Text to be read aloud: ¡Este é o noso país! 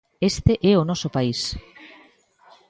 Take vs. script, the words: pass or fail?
pass